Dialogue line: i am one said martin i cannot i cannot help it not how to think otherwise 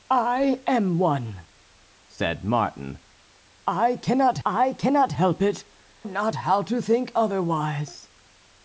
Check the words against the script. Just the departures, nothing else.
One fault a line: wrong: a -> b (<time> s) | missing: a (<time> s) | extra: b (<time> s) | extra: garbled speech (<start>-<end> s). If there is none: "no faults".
no faults